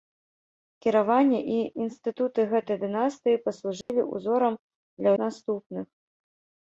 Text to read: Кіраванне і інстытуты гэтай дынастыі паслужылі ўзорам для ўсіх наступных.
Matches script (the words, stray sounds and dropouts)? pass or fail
fail